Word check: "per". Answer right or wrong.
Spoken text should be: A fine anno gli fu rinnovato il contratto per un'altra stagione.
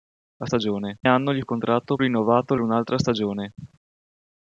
wrong